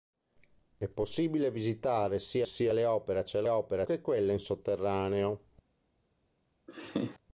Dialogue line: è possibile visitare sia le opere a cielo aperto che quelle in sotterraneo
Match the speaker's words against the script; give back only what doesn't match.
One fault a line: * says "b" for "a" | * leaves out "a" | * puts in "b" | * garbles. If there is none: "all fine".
* puts in "sia"
* says "opere" for "aperto"